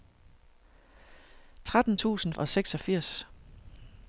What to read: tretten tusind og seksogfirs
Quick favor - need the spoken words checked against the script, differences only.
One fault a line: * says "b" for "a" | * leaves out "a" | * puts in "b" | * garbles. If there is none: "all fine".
all fine